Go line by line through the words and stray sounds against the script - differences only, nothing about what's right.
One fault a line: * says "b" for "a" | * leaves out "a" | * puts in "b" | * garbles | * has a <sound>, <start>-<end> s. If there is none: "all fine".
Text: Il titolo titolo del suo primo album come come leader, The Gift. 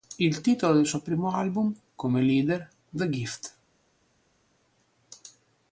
* leaves out "titolo"
* leaves out "come"